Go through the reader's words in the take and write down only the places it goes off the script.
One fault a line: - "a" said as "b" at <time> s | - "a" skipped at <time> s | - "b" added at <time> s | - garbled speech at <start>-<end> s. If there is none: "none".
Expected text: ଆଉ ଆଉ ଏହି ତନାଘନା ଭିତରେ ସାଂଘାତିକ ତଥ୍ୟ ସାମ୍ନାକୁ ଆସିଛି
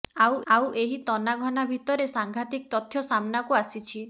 none